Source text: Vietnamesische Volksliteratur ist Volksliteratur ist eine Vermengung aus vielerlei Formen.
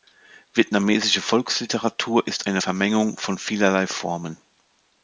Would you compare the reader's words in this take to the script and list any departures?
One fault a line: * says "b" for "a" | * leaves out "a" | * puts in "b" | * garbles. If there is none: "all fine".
* leaves out "Volksliteratur ist"
* says "von" for "aus"